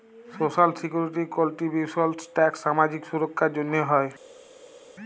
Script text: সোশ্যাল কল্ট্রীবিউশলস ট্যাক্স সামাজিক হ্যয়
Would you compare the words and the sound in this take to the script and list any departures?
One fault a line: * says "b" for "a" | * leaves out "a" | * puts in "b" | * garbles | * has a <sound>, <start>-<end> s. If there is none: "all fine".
* puts in "সিকিউরিটি"
* puts in "সুরক্ষার জ্যনহে"